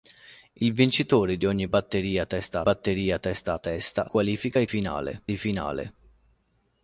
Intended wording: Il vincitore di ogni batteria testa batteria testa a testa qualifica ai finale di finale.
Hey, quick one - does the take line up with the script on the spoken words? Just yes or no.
yes